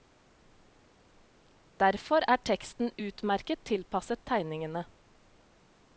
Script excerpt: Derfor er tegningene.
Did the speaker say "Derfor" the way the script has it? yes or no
yes